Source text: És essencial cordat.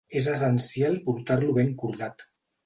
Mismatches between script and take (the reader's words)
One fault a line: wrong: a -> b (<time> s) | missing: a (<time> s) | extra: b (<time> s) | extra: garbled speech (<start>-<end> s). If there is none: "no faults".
extra: portar lo ben (1.1 s)